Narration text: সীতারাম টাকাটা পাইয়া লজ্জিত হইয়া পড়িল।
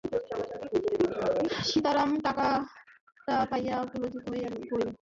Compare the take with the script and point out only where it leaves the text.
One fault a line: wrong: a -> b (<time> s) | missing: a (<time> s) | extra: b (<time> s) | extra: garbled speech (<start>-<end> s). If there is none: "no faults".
no faults